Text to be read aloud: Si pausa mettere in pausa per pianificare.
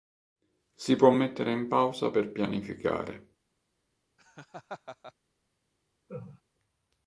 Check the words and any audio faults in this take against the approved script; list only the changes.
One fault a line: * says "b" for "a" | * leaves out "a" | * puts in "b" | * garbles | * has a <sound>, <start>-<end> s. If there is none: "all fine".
* says "può" for "pausa"
* has a laugh, 4.2-5.1 s
* has a laugh, 6.1-6.4 s